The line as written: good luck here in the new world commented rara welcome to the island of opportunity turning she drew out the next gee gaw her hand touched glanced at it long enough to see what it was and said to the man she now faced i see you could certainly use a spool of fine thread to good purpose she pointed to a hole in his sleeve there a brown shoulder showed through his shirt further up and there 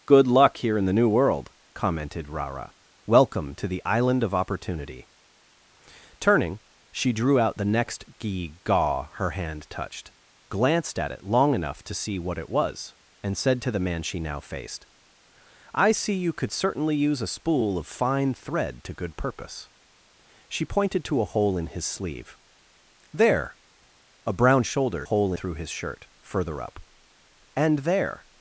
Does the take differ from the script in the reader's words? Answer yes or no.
yes